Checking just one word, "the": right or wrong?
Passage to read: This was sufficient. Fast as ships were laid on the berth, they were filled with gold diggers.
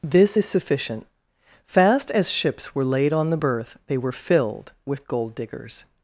right